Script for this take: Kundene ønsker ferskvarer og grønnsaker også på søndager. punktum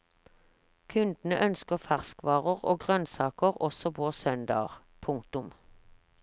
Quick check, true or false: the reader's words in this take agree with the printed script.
true